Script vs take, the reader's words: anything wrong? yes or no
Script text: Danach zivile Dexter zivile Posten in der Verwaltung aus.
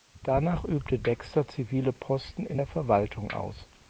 yes